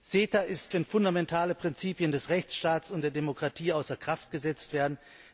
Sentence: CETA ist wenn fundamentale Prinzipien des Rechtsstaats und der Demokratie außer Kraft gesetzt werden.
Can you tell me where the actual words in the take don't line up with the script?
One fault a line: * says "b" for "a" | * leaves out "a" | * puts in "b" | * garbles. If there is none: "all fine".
all fine